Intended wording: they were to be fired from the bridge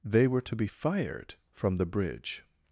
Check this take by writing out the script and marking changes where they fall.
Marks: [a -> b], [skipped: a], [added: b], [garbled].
they were to be fired from the bridge